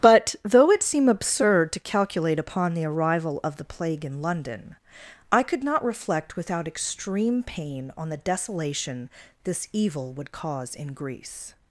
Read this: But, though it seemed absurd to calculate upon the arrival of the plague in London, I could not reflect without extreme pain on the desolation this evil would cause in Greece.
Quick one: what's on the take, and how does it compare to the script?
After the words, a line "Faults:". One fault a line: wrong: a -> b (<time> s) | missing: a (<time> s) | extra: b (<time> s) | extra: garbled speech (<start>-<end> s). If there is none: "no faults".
But, though it seem absurd to calculate upon the arrival of the plague in London, I could not reflect without extreme pain on the desolation this evil would cause in Greece.
Faults:
wrong: seemed -> seem (0.8 s)